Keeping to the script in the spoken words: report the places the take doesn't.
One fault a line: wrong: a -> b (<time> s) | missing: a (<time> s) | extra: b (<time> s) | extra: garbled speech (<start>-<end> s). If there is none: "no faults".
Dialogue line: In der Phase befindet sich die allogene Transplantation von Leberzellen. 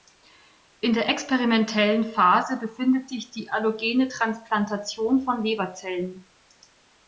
extra: experimentellen (1.1 s)